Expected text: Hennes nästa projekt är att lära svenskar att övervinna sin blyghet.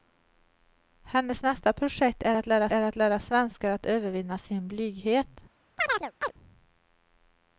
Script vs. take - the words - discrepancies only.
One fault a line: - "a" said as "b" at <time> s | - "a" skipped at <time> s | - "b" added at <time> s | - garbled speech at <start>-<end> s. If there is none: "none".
- "är att lära" added at 2.7 s